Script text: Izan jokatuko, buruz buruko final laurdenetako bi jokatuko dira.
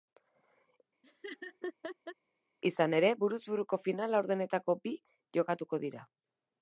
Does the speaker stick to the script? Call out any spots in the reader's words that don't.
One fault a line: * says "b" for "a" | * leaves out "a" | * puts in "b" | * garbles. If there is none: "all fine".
* says "ere" for "jokatuko"